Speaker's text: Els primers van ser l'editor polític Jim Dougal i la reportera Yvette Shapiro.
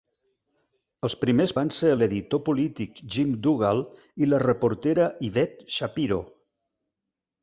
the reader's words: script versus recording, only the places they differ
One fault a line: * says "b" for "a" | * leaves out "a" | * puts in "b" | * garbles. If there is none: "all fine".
all fine